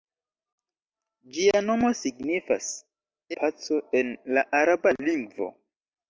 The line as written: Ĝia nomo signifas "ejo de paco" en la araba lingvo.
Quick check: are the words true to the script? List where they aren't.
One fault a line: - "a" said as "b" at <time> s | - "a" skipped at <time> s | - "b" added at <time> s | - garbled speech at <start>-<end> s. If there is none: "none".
- "ejo de" skipped at 2.7 s